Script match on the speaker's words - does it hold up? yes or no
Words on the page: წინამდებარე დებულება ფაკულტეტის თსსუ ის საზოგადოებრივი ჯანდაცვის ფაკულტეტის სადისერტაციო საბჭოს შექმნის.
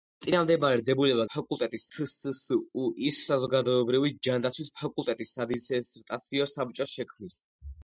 yes